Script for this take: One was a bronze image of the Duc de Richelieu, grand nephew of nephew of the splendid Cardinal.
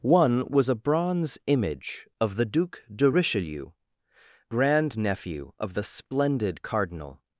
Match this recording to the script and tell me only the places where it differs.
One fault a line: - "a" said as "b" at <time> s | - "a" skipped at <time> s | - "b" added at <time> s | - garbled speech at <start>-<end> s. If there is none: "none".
- "nephew of" skipped at 5.7 s